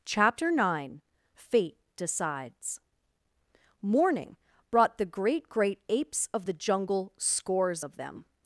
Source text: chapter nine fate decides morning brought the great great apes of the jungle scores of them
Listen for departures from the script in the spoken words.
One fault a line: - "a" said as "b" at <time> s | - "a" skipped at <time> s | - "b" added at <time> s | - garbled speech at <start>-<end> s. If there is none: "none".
none